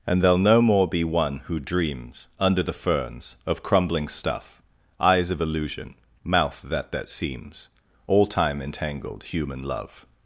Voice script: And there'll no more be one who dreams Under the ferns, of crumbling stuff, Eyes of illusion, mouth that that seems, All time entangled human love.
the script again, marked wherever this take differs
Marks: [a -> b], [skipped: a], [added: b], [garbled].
And there'll no more be one who dreams Under the ferns, of crumbling stuff, Eyes of illusion, mouth that that seems, All time entangled human love.